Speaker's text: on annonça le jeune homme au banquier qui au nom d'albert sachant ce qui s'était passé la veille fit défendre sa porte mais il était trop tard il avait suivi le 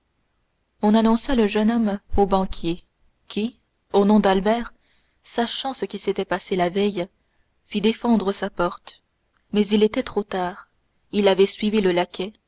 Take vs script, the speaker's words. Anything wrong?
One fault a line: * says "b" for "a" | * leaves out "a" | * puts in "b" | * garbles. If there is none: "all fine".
all fine